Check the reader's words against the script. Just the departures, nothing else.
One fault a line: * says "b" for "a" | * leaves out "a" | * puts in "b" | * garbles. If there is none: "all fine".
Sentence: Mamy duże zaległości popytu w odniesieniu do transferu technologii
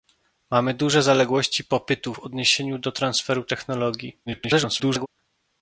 * garbles